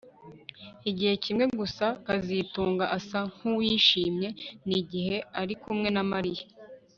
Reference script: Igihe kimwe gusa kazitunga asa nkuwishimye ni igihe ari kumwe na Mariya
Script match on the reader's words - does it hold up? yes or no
yes